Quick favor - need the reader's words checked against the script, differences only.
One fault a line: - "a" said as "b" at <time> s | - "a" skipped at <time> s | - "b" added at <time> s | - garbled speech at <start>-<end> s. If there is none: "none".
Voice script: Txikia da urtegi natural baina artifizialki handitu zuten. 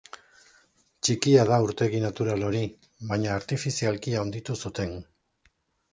- "hori" added at 2.5 s